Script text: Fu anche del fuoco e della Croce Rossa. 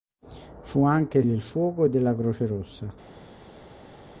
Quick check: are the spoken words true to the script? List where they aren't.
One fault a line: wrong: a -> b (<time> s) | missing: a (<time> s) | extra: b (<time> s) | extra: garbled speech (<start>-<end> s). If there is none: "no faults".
no faults